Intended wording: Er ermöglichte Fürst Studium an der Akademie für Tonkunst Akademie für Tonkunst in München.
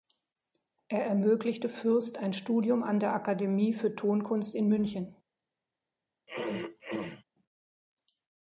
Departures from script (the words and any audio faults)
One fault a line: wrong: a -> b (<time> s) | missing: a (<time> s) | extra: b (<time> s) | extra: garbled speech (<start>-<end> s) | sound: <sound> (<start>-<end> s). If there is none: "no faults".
extra: ein (2.2 s)
missing: Akademie für Tonkunst (4.5 s)
sound: throat clearing (6.3-7.2 s)